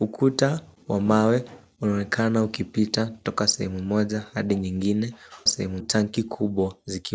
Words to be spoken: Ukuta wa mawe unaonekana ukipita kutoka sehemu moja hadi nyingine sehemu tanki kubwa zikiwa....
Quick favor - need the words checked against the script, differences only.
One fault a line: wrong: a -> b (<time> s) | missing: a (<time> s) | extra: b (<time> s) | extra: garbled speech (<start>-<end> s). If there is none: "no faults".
no faults